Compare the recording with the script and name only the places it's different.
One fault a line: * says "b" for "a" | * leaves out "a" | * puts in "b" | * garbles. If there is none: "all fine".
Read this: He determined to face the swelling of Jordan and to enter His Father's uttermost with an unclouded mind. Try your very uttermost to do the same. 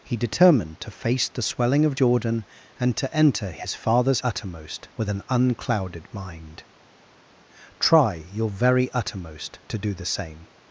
all fine